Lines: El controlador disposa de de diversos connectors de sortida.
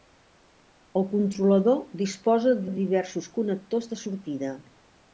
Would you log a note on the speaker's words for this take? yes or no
no